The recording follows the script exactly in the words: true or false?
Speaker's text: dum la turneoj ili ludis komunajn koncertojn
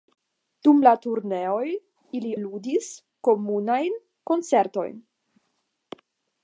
true